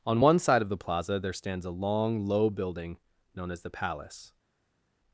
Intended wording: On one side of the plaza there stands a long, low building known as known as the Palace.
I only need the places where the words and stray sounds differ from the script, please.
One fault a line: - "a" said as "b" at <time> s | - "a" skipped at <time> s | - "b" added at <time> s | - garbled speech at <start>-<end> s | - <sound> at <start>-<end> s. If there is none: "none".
- "known as" skipped at 3.6 s